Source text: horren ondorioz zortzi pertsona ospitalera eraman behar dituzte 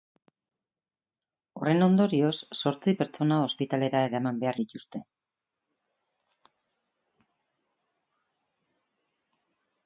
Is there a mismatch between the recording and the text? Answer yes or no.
no